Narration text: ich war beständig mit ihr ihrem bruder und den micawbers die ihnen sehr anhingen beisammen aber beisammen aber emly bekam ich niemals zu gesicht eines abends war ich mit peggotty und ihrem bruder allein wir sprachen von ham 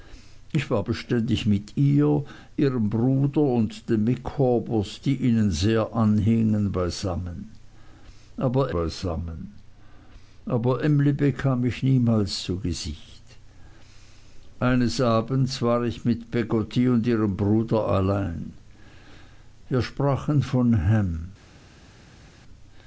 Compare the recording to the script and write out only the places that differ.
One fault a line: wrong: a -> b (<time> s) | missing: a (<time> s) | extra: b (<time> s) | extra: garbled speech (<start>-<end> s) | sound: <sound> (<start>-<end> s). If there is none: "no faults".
no faults